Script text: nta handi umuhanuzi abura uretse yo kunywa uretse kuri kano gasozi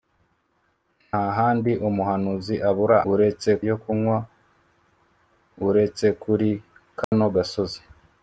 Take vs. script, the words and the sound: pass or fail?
fail